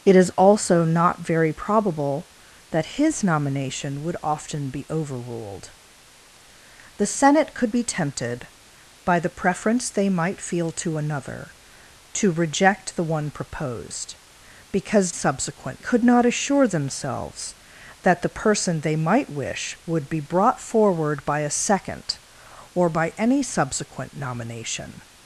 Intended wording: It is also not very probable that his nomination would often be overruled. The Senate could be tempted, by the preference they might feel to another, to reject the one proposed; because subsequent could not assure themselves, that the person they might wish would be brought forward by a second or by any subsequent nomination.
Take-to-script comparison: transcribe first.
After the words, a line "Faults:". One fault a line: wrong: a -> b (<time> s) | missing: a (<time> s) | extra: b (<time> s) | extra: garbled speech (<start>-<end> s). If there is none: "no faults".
It is also not very probable that his nomination would often be overruled. The Senate could be tempted, by the preference they might feel to another, to reject the one proposed; because subsequent could not assure themselves, that the person they might wish would be brought forward by a second or by any subsequent nomination.
Faults:
no faults